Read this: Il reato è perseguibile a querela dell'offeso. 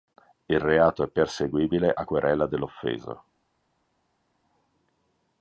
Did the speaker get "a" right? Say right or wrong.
right